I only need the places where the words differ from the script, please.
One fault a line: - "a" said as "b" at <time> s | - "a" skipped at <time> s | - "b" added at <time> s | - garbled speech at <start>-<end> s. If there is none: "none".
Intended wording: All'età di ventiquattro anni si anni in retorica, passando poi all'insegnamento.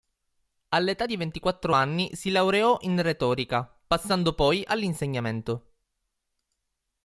- "anni" said as "laureò" at 2.3 s